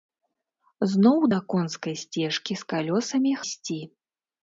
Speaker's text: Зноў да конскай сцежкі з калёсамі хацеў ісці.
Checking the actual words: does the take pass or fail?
fail